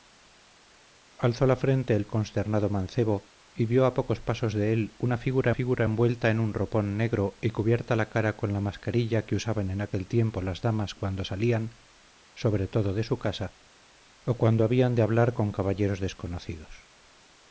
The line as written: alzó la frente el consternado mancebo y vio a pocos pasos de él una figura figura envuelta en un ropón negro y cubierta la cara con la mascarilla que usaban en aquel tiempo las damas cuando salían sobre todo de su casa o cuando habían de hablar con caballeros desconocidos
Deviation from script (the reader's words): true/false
false